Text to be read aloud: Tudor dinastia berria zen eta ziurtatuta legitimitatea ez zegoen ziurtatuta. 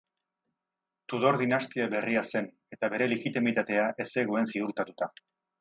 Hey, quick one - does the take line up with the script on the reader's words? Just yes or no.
no